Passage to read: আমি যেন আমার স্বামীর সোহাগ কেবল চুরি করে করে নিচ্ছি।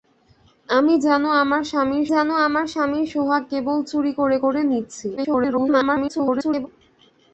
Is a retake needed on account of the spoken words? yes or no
yes